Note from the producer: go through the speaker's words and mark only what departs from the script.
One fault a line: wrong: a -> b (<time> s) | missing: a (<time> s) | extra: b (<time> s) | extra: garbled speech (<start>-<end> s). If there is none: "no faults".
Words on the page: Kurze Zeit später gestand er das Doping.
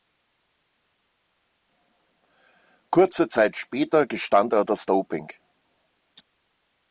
no faults